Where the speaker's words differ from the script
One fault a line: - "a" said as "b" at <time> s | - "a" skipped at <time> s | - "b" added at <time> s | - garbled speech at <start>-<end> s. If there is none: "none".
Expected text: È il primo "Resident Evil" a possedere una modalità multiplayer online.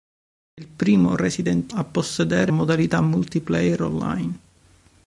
- "Evil" skipped at 1.7 s
- "una" skipped at 2.5 s